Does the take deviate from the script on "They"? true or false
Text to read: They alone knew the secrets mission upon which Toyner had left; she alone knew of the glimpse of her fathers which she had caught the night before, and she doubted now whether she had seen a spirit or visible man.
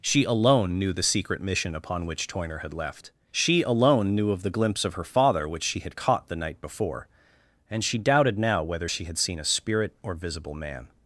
true